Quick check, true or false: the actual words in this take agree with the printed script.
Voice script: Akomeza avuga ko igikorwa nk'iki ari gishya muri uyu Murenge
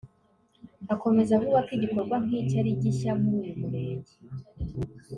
true